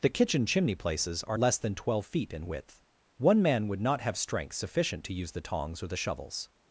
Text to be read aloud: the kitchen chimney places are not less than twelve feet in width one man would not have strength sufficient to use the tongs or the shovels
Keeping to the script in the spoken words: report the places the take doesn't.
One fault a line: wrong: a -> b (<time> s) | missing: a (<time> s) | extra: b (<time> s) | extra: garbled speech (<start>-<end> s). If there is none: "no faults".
missing: not (1.4 s)